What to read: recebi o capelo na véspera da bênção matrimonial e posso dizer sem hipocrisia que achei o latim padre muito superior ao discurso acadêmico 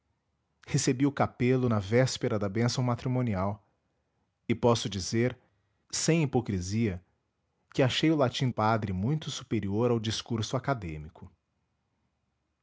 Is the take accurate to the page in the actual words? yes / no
yes